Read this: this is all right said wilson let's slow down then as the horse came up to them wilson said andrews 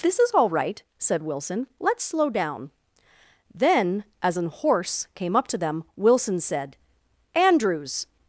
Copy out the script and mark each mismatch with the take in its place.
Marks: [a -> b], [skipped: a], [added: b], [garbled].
this is all right said wilson let's slow down then as [the -> an] horse came up to them wilson said andrews